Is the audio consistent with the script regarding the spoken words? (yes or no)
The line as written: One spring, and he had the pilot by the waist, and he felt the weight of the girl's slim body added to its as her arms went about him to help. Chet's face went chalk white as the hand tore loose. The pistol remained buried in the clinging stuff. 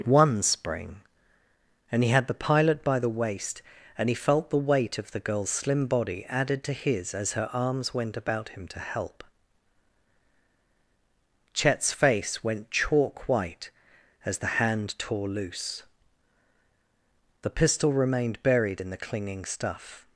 no